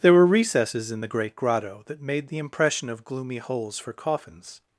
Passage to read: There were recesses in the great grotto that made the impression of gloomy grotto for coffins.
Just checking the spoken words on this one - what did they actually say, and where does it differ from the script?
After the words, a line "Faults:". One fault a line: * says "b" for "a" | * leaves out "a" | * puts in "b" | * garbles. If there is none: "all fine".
There were recesses in the great grotto that made the impression of gloomy holes for coffins.
Faults:
* says "holes" for "grotto"